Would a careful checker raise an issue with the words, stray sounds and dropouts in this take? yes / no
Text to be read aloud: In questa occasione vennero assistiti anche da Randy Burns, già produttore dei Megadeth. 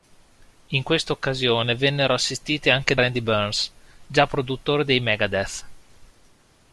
yes